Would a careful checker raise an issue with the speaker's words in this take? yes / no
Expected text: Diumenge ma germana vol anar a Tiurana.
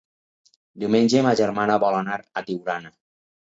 no